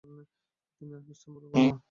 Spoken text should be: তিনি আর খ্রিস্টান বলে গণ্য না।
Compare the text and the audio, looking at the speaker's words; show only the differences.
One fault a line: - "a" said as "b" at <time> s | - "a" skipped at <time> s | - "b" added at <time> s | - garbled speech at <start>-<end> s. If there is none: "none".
none